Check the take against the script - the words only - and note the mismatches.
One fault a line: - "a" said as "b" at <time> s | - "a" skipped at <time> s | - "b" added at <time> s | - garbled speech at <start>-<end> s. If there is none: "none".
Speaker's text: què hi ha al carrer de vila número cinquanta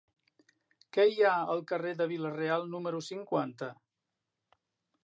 - "real" added at 2.4 s